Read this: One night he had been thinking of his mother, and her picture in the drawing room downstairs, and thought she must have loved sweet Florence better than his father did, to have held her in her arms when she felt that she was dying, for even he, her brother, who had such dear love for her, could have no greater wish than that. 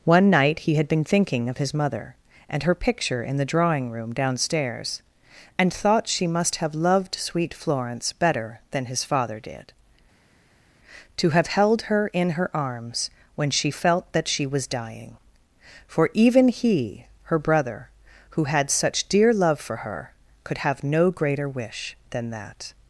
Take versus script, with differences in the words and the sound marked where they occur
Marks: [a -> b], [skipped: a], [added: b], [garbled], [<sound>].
One night he had been thinking of his mother, and her picture in the drawing room downstairs, and thought she must have loved sweet Florence better than his father did, to have held her in her arms when she felt that she was dying, for even he, her brother, who had such dear love for her, could have no greater wish than that.